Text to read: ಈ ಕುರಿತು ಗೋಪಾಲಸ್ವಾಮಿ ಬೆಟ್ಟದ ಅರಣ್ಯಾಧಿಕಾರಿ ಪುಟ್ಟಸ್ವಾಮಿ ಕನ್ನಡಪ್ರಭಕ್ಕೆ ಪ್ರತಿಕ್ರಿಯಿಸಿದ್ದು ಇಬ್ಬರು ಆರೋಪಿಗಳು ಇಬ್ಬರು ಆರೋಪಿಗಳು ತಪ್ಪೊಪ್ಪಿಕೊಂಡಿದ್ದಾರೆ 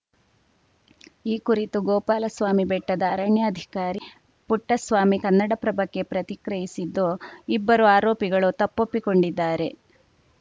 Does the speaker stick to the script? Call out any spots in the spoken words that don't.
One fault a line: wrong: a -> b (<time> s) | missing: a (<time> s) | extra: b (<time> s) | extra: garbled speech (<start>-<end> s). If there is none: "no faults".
missing: ಇಬ್ಬರು ಆರೋಪಿಗಳು (8.5 s)